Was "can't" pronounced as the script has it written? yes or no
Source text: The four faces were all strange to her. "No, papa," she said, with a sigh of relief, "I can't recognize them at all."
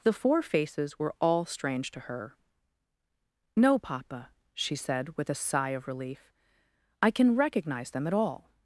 no